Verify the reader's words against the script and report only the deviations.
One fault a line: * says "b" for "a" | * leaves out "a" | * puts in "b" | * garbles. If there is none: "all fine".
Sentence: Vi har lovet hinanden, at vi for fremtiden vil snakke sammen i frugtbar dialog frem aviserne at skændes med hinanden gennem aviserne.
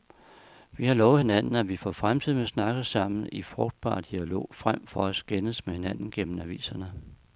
* says "for" for "aviserne"